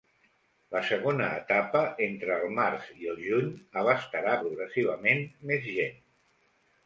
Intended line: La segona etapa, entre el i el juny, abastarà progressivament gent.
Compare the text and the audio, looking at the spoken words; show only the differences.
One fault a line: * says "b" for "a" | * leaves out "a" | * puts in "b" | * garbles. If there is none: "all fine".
* puts in "març"
* puts in "més"